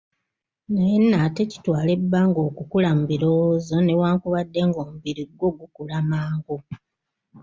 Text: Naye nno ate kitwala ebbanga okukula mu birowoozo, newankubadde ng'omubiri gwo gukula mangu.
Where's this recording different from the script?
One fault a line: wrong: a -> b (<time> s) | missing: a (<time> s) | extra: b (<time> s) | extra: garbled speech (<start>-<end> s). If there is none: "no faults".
no faults